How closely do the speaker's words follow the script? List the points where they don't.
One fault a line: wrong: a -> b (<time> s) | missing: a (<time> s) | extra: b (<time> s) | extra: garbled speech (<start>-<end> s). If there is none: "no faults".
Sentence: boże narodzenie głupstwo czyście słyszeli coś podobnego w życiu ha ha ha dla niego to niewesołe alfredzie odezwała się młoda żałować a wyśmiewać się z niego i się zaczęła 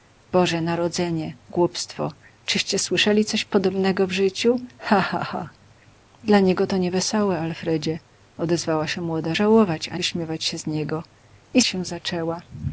no faults